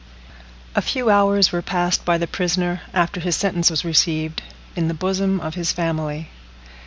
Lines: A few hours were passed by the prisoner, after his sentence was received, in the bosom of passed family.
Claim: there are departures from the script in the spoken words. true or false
true